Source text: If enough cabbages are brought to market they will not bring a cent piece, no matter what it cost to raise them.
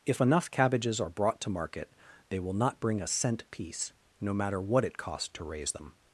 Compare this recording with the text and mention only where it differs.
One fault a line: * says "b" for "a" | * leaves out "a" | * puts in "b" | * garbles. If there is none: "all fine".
all fine